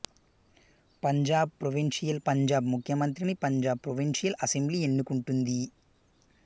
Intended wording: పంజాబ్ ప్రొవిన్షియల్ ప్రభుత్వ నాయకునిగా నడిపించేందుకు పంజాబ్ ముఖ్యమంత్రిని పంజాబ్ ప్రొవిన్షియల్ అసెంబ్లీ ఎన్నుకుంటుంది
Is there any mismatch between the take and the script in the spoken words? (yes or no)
yes